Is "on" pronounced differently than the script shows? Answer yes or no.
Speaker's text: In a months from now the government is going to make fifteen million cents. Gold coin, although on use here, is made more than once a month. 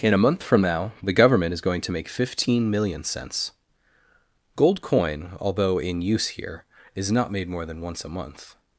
yes